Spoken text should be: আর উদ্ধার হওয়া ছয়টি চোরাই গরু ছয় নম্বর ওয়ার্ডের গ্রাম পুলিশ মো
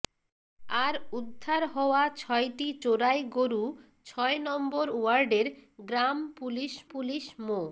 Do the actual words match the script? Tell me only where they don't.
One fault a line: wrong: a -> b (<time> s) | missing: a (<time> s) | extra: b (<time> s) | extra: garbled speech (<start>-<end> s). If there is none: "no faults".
extra: পুলিশ (6.9 s)